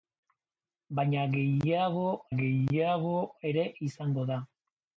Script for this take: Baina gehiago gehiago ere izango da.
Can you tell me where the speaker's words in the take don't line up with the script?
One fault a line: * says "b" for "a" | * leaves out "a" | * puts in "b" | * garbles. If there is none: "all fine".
all fine